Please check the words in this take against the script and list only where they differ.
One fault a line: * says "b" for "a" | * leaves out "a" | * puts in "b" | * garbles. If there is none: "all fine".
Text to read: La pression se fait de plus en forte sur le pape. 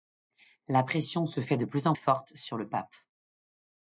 all fine